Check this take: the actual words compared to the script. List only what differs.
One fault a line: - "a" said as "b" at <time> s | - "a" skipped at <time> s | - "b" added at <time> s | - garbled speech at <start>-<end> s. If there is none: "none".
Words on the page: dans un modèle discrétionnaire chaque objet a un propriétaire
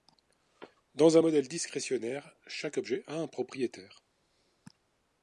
none